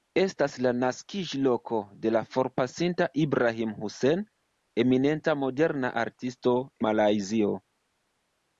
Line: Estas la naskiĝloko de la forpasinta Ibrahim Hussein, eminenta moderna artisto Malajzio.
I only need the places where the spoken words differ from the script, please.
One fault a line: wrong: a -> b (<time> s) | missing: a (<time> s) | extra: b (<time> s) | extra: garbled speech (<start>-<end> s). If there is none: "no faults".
no faults